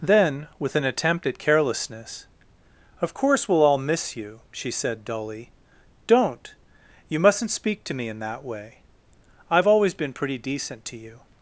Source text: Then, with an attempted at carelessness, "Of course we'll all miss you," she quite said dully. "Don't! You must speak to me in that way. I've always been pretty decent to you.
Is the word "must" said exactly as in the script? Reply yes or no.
no